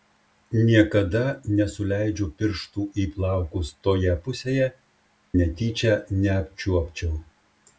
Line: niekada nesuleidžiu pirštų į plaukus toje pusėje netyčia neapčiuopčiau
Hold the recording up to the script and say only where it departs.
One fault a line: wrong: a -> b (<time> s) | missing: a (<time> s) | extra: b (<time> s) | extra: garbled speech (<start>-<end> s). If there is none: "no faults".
no faults